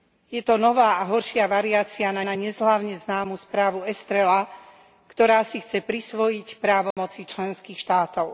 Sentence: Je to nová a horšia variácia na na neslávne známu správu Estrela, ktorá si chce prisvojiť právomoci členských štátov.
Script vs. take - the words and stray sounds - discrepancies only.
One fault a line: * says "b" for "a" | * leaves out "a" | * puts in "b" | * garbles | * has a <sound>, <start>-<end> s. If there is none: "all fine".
* has a dropout, 6.9-7.0 s